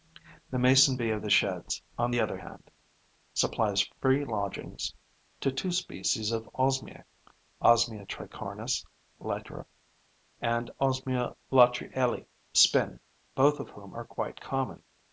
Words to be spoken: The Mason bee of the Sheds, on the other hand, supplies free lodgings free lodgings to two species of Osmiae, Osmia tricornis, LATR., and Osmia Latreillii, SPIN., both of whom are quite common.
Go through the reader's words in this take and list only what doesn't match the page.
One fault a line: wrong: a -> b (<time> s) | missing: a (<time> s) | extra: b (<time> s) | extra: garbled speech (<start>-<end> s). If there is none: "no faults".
missing: free lodgings (4.9 s)